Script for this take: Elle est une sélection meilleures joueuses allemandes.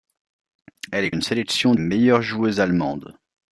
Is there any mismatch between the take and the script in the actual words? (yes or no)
no